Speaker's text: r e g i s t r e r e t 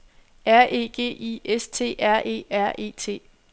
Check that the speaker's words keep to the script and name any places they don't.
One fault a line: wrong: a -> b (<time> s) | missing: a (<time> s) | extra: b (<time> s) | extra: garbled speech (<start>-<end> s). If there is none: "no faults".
no faults